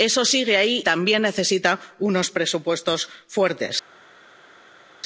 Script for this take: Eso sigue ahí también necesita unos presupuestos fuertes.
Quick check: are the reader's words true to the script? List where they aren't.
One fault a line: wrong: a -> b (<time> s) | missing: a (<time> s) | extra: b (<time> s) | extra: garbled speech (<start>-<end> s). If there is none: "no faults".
no faults